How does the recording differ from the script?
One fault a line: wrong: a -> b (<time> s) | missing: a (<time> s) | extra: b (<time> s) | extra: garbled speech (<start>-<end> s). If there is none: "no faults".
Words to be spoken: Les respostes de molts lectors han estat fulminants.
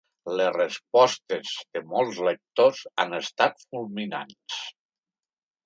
no faults